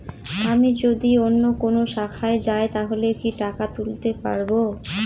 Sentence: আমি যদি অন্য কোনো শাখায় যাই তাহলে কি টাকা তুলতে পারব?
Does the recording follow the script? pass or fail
pass